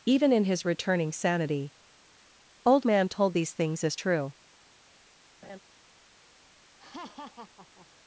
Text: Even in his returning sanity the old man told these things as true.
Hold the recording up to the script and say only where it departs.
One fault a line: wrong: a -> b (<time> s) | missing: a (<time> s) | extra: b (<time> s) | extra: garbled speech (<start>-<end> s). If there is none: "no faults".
missing: the (1.7 s)